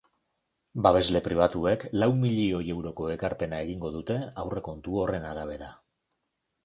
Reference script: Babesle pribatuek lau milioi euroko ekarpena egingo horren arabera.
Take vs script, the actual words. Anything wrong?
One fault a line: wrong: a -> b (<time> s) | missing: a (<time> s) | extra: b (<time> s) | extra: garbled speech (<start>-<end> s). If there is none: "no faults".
extra: dute aurrekontu (4.0 s)